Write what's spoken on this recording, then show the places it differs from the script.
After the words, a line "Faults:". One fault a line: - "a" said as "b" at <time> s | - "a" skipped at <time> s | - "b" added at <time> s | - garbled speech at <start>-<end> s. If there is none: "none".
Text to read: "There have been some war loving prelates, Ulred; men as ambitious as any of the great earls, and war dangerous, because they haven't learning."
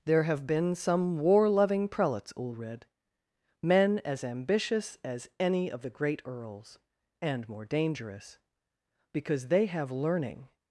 "There have been some war loving prelates, Ulred; men as ambitious as any of the great earls, and more dangerous, because they have learning."
Faults:
- "war" said as "more" at 7.5 s
- "haven't" said as "have" at 9.7 s